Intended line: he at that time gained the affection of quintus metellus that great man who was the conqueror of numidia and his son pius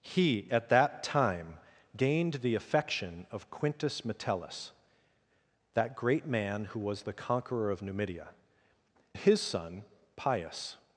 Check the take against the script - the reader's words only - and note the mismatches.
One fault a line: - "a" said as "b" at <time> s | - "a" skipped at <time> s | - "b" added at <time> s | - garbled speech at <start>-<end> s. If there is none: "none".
- "and" skipped at 8.3 s